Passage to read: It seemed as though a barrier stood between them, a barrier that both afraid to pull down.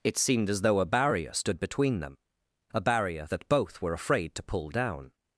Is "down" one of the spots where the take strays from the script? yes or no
no